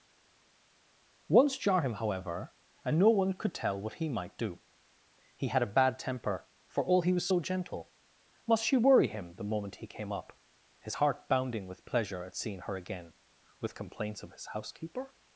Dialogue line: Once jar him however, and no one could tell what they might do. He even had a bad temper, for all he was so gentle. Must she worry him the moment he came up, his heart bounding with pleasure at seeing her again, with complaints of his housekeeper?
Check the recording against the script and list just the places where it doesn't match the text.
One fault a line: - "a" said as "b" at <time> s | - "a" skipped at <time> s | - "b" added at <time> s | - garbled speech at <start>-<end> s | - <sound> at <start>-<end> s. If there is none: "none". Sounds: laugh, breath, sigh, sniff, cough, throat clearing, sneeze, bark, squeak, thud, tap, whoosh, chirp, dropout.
- "they" said as "he" at 3.9 s
- "even" skipped at 5.5 s